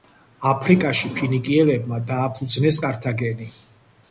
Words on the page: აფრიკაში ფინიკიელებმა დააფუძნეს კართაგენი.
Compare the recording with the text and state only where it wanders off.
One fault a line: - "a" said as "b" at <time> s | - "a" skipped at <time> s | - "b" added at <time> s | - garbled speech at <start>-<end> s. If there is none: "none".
none